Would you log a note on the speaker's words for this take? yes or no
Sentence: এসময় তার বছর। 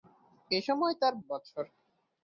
no